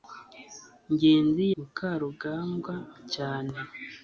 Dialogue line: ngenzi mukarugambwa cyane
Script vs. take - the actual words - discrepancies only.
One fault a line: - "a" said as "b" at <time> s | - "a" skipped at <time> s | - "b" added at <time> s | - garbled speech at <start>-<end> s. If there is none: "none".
none